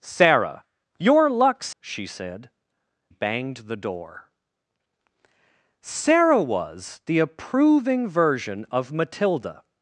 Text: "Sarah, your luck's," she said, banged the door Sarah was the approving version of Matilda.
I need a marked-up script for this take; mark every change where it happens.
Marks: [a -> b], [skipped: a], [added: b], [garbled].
"Sarah, your luck's," she said, banged the door Sarah was the approving version of Matilda.